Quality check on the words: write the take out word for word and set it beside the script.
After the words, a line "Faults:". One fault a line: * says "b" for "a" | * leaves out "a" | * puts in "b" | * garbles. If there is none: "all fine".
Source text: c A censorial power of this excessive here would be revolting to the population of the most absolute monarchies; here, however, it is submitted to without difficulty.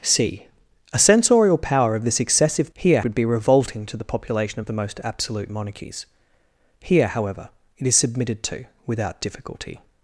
c A censorial power of this excessive here would be revolting to the population of the most absolute monarchies; here, however, it is submitted to without difficulty.
Faults:
all fine